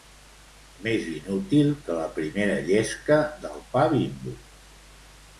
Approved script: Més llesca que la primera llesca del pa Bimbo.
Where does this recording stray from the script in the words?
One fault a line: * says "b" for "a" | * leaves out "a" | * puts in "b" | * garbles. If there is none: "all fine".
* says "inútil" for "llesca"